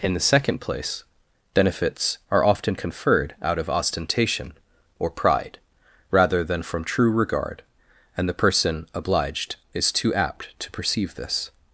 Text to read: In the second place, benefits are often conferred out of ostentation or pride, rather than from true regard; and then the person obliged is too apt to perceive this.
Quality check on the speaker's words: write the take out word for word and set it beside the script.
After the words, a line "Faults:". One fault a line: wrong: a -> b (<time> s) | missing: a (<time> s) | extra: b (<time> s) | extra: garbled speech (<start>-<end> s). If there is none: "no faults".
In the second place, benefits are often conferred out of ostentation or pride, rather than from true regard; and the person obliged is too apt to perceive this.
Faults:
missing: then (8.3 s)